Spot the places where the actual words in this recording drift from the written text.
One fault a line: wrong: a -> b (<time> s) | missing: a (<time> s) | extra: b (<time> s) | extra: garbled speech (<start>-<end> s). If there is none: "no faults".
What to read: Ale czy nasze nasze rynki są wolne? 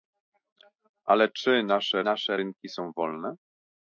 no faults